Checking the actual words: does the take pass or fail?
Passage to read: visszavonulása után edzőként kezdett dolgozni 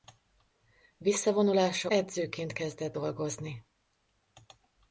fail